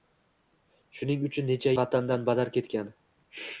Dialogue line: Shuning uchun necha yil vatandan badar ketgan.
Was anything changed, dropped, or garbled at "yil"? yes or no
yes